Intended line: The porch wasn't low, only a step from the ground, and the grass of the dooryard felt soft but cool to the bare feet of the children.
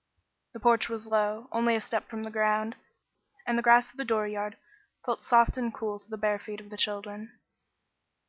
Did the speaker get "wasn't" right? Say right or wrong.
wrong